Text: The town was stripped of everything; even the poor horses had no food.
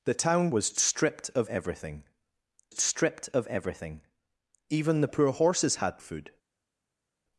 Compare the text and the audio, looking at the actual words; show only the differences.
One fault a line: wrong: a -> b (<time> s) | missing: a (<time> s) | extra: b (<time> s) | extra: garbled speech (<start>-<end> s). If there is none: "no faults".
extra: stripped of everything (2.7 s)
missing: no (6.0 s)